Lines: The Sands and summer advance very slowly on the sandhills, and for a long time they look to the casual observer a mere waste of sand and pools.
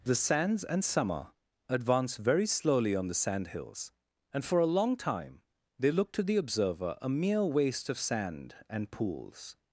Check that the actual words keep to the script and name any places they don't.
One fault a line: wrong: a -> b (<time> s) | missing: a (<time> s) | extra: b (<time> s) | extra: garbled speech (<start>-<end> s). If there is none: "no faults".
missing: casual (6.4 s)